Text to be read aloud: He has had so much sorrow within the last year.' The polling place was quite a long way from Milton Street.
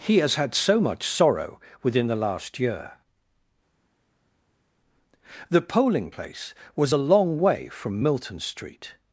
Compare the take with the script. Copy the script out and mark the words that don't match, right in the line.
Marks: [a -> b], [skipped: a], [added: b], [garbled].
He has had so much sorrow within the last year.' The polling place was [skipped: quite] a long way from Milton Street.